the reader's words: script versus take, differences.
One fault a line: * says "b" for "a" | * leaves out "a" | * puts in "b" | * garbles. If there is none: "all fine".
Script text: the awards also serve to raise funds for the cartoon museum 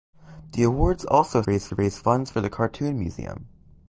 * says "raise" for "serve"